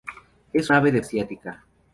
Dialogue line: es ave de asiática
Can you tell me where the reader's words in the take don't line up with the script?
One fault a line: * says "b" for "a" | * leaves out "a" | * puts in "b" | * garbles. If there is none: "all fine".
all fine